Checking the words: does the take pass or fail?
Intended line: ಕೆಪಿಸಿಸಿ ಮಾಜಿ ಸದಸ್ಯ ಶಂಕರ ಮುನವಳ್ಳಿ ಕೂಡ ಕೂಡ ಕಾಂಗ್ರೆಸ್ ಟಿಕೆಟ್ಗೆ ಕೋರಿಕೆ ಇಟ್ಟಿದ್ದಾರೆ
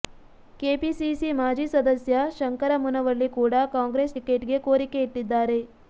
fail